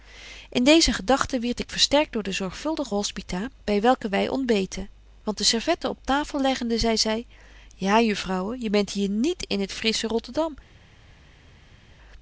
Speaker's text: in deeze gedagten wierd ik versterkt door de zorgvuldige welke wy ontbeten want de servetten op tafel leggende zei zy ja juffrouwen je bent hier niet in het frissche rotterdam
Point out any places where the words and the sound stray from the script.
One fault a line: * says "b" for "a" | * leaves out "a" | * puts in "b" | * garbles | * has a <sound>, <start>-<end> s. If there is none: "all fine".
* puts in "hospita by"